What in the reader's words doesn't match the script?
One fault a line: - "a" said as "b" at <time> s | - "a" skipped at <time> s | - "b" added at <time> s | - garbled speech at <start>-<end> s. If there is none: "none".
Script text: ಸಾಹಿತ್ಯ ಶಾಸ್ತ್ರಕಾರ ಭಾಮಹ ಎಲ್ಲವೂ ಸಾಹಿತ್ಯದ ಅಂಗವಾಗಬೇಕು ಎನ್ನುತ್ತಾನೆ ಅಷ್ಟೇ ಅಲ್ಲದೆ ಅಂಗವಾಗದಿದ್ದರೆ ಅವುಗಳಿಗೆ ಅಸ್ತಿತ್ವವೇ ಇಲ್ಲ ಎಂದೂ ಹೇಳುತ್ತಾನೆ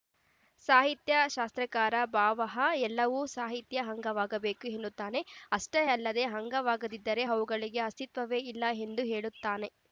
none